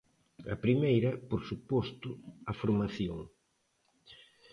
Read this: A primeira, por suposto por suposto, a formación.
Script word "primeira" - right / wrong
right